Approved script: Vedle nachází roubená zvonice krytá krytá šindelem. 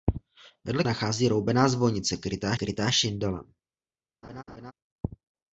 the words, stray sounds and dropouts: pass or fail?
fail